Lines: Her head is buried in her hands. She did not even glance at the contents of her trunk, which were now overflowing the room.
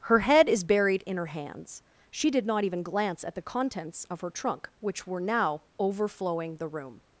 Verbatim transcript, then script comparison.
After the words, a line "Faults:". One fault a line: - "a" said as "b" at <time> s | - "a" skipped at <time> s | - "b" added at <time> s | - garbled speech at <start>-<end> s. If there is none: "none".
Her head is buried in her hands. She did not even glance at the contents of her trunk, which were now overflowing the room.
Faults:
none